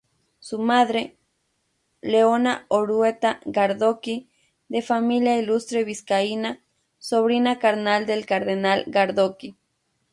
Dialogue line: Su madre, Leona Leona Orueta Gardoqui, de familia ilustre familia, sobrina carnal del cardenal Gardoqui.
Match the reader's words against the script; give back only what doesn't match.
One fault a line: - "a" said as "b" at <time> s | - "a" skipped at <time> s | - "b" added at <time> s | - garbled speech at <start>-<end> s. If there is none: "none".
- "Leona" skipped at 2.7 s
- "familia" said as "vizcaína" at 5.8 s